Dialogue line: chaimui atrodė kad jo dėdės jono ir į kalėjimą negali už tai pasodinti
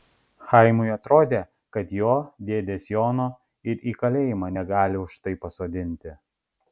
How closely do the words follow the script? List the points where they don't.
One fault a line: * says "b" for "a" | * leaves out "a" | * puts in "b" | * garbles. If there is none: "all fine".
all fine